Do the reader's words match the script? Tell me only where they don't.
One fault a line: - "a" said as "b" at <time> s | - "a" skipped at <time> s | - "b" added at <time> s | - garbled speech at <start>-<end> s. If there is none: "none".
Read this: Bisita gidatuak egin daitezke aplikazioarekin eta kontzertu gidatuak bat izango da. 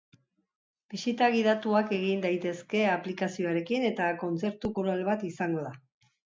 - "gidatuak" said as "koral" at 4.8 s